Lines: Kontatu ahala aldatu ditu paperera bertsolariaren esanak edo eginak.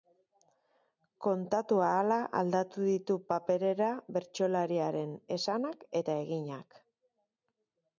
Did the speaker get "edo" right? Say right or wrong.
wrong